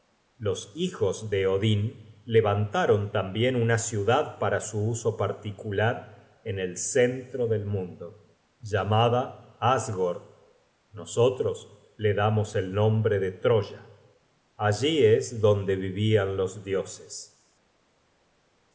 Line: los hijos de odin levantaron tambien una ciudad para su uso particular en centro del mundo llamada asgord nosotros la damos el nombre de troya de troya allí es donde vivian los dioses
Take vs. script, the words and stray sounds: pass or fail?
fail